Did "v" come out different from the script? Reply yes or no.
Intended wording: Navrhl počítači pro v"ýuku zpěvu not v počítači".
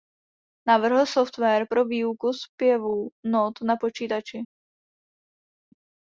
yes